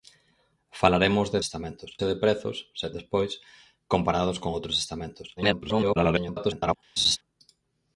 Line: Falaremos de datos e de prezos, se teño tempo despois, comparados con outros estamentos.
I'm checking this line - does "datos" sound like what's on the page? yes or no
no